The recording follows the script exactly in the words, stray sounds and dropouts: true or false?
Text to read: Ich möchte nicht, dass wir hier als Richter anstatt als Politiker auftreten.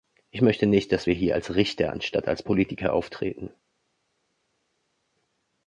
true